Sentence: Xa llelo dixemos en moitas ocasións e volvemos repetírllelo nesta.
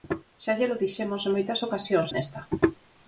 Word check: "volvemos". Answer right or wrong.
wrong